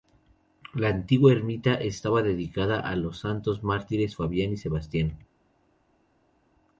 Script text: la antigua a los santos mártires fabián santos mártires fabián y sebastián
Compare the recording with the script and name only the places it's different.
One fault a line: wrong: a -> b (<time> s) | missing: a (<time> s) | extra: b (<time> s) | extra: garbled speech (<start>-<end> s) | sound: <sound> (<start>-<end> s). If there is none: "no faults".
wrong: a los santos mártires fabián -> ermita estaba dedicada a los (1.3 s)